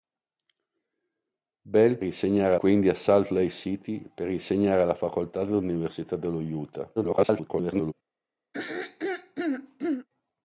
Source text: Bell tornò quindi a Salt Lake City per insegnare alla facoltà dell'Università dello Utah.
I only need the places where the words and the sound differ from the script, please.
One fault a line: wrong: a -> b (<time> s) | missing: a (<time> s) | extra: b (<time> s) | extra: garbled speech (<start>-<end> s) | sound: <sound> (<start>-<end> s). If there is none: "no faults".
wrong: tornò -> insegnare (2.0 s)
extra: garbled speech (7.0-7.9 s)
sound: throat clearing (8.5-10.1 s)